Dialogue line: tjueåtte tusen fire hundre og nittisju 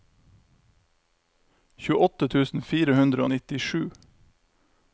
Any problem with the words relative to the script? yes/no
no